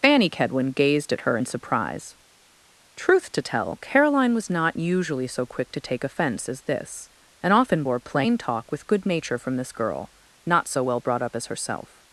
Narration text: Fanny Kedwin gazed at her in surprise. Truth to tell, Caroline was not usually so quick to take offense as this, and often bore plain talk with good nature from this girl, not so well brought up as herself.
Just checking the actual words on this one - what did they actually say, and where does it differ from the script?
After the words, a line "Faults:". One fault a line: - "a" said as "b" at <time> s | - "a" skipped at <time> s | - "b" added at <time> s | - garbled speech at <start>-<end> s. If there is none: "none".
Fanny Kedwin gazed at her in surprise. Truth to tell, Caroline was not usually so quick to take offense as this, and often bore plain talk with good nature from this girl, not so well brought up as herself.
Faults:
none